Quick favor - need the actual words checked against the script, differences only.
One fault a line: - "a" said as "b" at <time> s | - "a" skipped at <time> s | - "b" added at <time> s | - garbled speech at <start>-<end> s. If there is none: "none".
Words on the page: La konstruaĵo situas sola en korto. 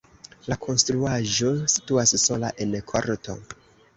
none